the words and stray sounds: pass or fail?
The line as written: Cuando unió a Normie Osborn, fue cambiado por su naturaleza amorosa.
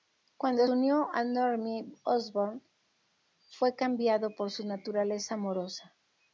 pass